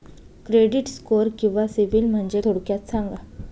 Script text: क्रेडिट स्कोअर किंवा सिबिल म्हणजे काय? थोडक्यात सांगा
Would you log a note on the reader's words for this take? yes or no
yes